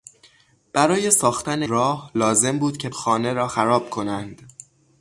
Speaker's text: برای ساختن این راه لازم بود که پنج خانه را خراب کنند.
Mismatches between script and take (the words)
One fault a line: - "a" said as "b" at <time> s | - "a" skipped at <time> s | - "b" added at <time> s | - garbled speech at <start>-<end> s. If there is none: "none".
- "این" skipped at 1.6 s
- "پنج" skipped at 2.9 s